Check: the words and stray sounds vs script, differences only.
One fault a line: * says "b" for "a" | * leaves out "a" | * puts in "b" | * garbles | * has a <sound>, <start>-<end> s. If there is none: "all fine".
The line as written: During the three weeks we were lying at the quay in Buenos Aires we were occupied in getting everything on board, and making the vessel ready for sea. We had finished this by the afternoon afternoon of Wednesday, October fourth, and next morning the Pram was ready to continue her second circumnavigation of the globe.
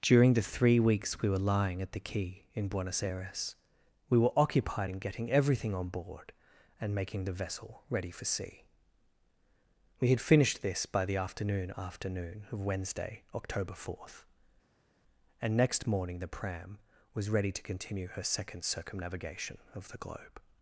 all fine